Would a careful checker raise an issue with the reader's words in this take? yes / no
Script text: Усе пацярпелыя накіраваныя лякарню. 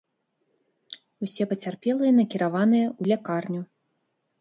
yes